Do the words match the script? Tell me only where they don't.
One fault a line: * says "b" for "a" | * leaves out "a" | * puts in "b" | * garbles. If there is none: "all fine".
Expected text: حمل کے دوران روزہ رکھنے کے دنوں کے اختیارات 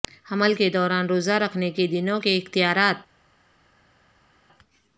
all fine